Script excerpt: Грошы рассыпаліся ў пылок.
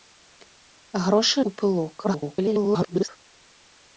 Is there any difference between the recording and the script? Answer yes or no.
yes